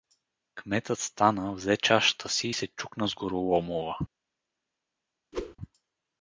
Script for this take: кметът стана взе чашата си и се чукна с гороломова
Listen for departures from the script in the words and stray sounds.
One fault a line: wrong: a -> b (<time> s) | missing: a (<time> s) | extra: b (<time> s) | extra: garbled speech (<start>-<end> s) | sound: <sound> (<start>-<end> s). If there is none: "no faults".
sound: whoosh (5.3-5.6 s)